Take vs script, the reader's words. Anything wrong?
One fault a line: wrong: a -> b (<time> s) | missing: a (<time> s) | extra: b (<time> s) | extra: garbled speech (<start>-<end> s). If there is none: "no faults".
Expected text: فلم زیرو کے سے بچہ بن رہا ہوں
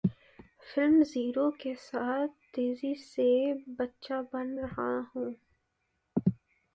extra: ساتھ تیزی (1.8 s)